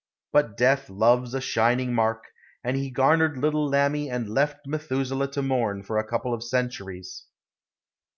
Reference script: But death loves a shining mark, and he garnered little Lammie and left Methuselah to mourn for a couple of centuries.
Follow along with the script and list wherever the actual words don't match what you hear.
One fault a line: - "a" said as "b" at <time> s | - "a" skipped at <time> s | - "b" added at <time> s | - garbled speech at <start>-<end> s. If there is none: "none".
none